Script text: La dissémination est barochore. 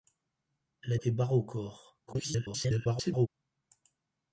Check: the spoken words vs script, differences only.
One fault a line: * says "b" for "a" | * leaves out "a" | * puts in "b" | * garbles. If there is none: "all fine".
* leaves out "dissémination"
* garbles